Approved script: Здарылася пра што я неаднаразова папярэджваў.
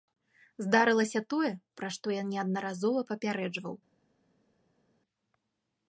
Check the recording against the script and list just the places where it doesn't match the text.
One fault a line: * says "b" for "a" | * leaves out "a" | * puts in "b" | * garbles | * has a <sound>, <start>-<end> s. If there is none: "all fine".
* puts in "тое"